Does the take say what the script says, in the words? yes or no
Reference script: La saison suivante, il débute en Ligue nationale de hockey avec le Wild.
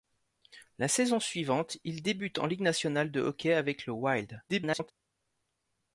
no